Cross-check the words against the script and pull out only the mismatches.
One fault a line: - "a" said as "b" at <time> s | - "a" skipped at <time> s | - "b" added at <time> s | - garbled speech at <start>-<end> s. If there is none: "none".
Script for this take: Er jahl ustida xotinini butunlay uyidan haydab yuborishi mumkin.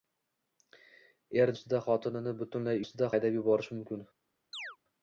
- "jahl" skipped at 1.5 s
- "uyidan" said as "ustida" at 2.9 s